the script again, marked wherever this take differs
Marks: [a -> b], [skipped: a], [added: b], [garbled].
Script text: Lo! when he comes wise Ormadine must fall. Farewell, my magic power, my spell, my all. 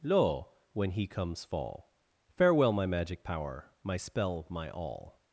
Lo! when he comes [skipped: wise Ormadine must] fall. Farewell, my magic power, my spell, my all.